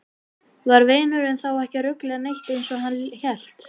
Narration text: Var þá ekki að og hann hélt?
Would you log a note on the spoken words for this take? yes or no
yes